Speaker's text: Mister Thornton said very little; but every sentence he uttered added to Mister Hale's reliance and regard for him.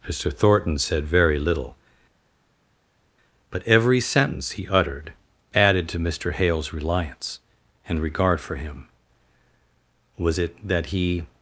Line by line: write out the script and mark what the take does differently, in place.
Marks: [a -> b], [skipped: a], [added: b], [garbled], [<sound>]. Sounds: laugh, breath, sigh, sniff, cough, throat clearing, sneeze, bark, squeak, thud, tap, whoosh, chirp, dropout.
Mister Thornton said very little; but every sentence he uttered added to Mister Hale's reliance and regard for him. [added: Was it that he]